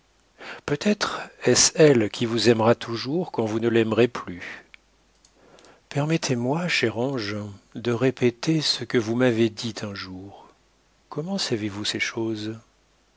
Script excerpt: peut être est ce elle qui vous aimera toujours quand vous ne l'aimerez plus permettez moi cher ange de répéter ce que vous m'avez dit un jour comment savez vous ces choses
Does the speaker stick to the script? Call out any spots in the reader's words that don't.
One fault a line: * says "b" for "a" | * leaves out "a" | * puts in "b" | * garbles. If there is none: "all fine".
all fine